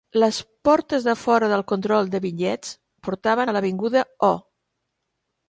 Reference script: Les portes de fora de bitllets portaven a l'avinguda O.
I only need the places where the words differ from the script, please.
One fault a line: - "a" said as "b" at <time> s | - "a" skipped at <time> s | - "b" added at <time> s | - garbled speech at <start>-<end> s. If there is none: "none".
- "del control" added at 1.5 s